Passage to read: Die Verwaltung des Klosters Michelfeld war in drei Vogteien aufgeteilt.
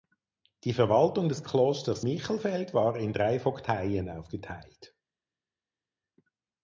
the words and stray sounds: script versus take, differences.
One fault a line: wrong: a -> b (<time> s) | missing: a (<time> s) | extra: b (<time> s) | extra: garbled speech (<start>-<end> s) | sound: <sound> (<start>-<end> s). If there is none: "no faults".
no faults